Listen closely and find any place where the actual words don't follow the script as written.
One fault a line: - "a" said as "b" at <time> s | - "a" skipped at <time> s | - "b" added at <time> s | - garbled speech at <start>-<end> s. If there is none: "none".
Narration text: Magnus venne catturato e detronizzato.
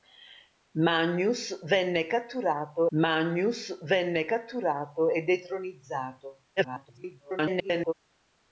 - "magnus venne catturato" added at 3.0 s
- garbled speech at 6.6-7.9 s